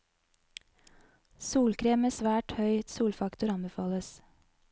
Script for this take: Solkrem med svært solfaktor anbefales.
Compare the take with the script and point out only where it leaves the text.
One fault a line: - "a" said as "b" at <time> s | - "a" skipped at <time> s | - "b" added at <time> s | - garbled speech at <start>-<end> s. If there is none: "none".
- "høy" added at 2.6 s